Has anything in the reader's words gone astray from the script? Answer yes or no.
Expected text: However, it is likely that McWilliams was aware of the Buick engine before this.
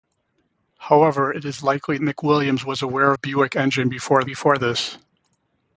yes